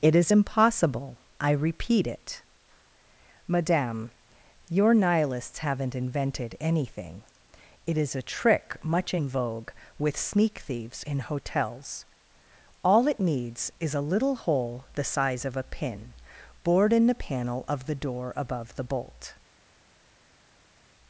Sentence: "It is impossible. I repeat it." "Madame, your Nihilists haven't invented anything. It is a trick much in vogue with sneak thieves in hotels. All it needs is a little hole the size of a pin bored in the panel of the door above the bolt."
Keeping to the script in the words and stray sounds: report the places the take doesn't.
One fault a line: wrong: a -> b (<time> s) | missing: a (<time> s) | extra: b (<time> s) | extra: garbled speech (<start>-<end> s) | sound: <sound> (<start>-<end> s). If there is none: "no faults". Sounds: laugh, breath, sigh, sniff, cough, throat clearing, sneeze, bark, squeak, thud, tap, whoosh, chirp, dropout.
no faults